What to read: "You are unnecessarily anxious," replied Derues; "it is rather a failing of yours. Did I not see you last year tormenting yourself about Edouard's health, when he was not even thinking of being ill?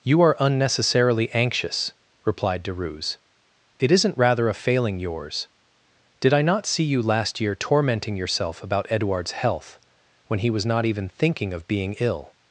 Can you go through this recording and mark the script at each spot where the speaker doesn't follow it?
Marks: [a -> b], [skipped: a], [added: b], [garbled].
"You are unnecessarily anxious," replied Derues; "it [is -> isn't] rather a failing [skipped: of] yours. Did I not see you last year tormenting yourself about Edouard's health, when he was not even thinking of being ill?